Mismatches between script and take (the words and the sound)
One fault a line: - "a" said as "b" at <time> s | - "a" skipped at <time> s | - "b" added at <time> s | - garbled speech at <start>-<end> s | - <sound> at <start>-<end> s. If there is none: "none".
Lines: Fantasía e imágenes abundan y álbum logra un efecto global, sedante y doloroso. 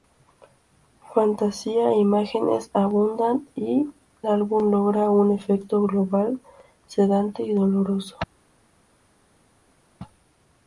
none